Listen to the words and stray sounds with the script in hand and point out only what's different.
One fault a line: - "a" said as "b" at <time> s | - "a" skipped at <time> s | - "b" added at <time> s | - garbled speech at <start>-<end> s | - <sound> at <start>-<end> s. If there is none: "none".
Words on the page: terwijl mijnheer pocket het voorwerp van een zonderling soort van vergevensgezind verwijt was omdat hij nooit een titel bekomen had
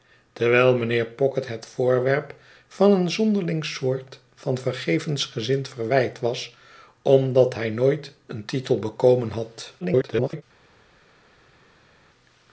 - garbled speech at 9.8-10.4 s